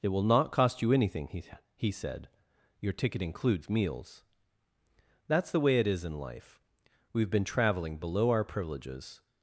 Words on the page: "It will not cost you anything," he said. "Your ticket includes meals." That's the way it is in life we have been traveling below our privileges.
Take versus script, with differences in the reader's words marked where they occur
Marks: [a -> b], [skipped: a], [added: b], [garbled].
"It will not cost you anything," he [added: he] said. "Your ticket includes meals." That's the way it is in life we have been traveling below our privileges.